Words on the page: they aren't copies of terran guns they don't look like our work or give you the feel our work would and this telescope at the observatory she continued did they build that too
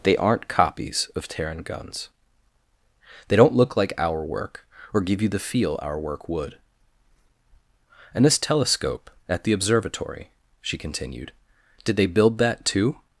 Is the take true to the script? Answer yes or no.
yes